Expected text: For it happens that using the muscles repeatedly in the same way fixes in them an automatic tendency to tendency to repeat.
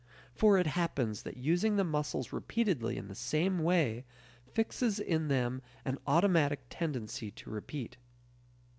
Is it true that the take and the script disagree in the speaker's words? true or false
true